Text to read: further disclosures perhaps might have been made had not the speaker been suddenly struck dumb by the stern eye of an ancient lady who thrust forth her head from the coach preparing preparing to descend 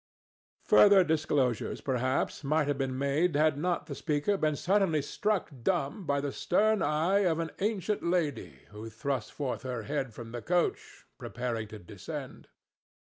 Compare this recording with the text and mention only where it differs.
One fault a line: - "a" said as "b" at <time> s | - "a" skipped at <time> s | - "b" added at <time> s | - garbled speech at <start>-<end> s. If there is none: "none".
- "preparing" skipped at 11.7 s